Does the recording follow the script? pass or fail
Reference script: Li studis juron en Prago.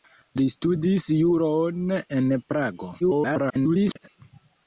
fail